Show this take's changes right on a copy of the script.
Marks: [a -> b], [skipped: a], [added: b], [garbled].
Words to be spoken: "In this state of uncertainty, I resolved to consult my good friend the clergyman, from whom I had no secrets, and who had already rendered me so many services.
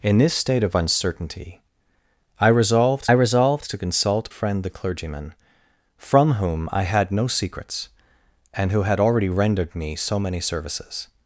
"In this state of uncertainty, I resolved [added: resolved] to consult [skipped: my good] friend the clergyman, from whom I had no secrets, and who had already rendered me so many services.